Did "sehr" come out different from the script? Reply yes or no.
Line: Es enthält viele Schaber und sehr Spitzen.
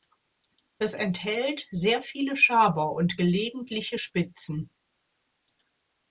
yes